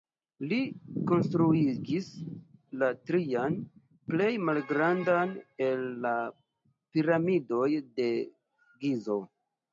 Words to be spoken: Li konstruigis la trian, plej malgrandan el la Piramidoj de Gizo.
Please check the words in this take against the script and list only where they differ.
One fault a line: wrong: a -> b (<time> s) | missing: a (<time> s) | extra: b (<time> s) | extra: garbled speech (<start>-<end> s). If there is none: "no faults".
no faults